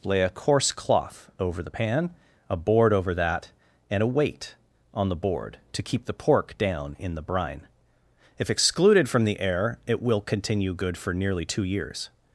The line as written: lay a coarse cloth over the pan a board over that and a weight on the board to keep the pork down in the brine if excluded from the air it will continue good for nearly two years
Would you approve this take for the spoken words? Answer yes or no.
yes